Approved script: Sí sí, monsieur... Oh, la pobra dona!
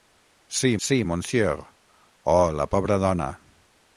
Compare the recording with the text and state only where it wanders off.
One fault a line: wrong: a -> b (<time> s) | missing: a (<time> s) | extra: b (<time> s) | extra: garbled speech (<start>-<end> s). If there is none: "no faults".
no faults